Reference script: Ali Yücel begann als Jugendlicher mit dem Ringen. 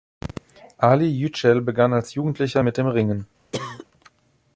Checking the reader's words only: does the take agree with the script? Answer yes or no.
yes